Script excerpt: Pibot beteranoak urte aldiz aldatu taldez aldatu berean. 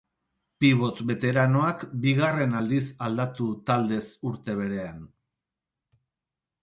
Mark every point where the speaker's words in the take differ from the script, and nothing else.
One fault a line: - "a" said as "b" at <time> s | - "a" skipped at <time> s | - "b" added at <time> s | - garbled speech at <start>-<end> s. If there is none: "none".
- "urte" said as "bigarren" at 2.0 s
- "aldatu" said as "urte" at 4.3 s